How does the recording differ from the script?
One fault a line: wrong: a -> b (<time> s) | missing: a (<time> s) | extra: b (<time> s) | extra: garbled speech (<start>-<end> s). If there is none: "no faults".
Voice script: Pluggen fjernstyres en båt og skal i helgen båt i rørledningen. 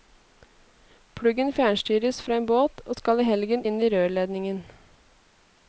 extra: fra (2.2 s)
wrong: båt -> inn (3.7 s)